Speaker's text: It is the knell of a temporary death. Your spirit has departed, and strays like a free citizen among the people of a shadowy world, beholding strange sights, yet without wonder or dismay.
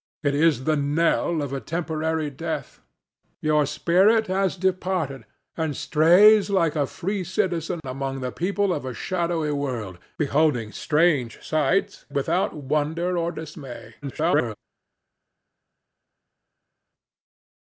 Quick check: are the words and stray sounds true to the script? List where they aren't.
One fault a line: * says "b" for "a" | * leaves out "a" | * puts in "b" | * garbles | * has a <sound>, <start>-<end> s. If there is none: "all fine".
* leaves out "yet"
* garbles